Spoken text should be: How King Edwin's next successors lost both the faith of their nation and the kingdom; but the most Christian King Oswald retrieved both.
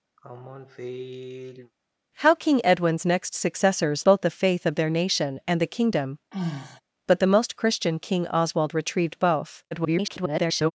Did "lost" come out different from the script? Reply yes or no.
yes